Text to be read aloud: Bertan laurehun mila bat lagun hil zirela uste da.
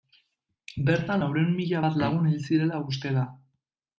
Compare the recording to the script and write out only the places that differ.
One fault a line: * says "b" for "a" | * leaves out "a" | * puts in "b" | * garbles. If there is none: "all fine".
all fine